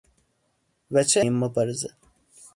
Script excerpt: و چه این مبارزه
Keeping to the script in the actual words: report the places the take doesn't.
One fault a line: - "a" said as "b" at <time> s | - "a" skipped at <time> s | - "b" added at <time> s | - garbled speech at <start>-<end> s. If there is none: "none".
none